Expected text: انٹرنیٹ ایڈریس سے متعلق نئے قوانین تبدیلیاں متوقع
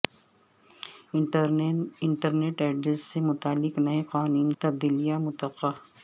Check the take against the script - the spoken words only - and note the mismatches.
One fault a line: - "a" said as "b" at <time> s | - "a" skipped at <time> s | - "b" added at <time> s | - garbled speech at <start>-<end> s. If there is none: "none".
none